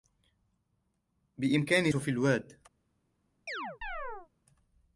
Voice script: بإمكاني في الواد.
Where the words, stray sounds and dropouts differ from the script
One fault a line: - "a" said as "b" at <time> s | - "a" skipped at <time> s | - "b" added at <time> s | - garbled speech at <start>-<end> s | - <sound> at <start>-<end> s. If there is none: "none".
- chirp at 3.5-4.3 s